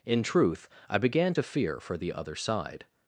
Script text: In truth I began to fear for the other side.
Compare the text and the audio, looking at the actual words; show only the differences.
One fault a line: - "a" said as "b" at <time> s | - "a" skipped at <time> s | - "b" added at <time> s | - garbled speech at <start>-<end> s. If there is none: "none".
none